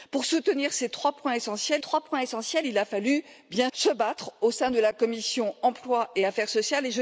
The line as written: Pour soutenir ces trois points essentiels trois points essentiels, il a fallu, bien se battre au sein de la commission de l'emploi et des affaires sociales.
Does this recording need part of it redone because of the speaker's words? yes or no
no